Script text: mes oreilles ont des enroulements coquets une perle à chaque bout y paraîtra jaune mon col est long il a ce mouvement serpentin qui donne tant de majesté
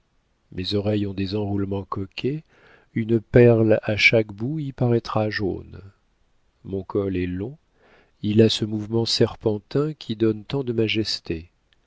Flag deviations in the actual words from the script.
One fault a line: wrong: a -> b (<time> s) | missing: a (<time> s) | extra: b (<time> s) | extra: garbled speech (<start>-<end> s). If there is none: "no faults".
no faults